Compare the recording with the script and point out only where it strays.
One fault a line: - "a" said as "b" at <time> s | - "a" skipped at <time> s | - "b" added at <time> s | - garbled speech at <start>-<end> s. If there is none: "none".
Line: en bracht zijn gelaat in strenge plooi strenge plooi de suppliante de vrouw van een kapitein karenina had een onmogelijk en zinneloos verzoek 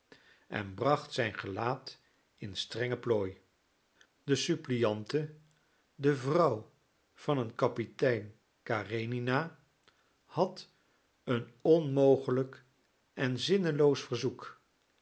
- "strenge plooi" skipped at 3.4 s